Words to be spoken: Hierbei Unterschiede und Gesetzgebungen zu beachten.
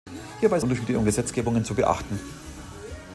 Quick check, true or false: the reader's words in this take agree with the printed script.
true